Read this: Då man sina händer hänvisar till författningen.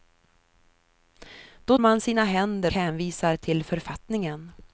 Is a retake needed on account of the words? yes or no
no